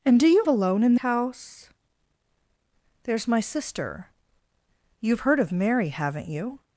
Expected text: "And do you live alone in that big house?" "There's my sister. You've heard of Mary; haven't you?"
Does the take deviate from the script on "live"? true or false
true